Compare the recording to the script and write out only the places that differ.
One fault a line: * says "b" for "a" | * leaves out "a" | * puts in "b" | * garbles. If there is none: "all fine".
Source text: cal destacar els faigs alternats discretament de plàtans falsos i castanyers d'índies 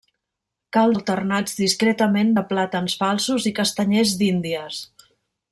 * leaves out "destacar els faigs"